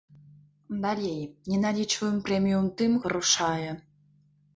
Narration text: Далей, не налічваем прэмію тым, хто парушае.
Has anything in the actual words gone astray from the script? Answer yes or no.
yes